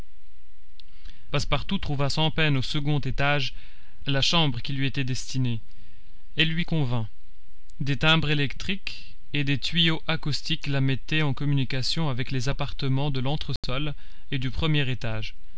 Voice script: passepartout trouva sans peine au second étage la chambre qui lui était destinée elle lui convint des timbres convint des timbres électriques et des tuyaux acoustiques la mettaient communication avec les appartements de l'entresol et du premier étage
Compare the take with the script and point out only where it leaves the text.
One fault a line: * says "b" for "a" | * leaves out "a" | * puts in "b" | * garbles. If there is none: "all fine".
* leaves out "convint des timbres"
* puts in "en"